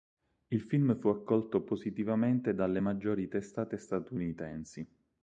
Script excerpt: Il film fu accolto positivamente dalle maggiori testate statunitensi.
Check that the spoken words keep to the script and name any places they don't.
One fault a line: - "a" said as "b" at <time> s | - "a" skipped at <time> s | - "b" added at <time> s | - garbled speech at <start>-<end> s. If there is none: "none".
none